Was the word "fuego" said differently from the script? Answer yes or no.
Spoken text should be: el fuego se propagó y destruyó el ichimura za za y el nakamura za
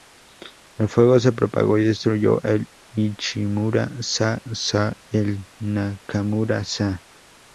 no